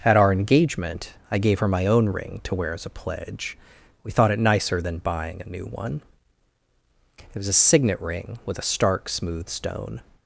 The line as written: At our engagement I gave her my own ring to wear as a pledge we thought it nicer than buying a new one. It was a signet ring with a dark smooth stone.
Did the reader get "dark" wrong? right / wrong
wrong